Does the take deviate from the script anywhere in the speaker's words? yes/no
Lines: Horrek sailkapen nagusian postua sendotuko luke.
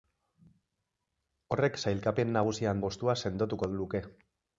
no